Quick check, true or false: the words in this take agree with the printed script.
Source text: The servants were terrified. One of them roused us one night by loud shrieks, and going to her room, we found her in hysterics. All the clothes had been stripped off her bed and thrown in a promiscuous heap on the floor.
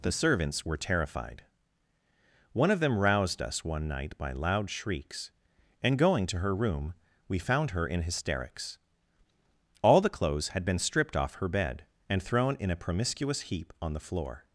true